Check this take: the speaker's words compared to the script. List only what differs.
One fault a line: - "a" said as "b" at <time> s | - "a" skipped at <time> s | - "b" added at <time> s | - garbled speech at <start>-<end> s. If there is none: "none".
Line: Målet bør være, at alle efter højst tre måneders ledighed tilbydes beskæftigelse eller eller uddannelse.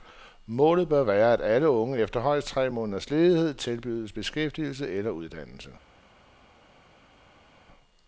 - "unge" added at 1.7 s
- "eller" skipped at 5.1 s